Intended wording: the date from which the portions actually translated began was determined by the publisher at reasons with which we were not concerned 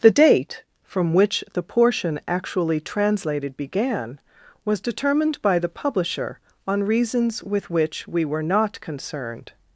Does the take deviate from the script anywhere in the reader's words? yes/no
yes